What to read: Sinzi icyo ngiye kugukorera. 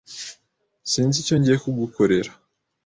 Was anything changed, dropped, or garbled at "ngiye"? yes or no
no